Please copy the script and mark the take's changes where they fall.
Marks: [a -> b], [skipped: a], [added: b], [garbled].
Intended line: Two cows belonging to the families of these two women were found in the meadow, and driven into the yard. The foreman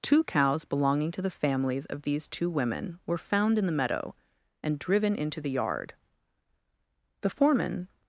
Two cows belonging to the families of these two women were found in the meadow, and driven into the yard. The foreman